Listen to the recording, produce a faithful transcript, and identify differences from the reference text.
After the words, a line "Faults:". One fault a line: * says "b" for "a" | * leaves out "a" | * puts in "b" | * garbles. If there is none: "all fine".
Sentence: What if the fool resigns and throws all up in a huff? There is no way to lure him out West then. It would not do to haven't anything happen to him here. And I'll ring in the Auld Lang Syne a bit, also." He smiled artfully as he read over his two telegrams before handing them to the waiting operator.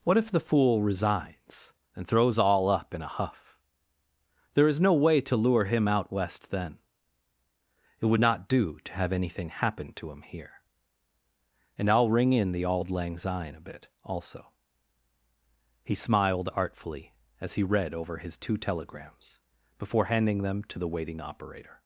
What if the fool resigns and throws all up in a huff? There is no way to lure him out West then. It would not do to have anything happen to him here. And I'll ring in the Auld Lang Syne a bit, also." He smiled artfully as he read over his two telegrams before handing them to the waiting operator.
Faults:
* says "have" for "haven't"